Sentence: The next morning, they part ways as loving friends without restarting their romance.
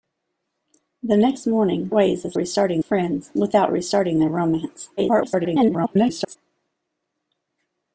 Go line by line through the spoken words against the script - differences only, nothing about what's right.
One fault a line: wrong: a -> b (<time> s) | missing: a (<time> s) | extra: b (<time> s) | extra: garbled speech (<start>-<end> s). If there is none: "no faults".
missing: they part (1.9 s)
wrong: loving -> restarting (2.4 s)
extra: garbled speech (5.0-6.4 s)